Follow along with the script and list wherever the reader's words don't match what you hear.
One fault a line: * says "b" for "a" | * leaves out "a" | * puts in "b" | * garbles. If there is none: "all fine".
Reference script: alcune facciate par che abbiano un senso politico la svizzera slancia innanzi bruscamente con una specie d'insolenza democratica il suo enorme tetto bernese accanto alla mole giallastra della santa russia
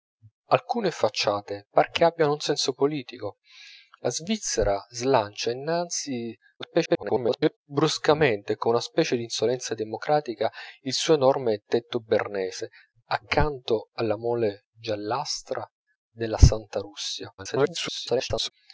* garbles
* garbles